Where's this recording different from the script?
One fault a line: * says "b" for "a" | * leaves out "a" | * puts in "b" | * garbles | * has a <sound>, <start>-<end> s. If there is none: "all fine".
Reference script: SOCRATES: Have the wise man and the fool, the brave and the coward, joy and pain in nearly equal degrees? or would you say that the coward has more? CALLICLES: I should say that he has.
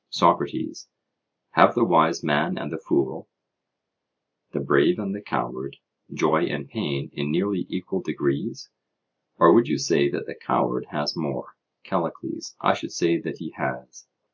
all fine